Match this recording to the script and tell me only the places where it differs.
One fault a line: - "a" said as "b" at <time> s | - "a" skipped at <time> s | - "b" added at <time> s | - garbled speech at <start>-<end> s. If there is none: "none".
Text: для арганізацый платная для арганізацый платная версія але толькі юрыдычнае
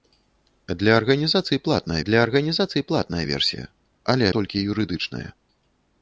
none